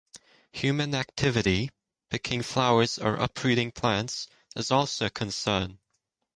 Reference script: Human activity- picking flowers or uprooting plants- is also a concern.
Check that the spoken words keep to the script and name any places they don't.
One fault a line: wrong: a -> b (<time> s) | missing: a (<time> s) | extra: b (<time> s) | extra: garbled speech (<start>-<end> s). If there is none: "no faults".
no faults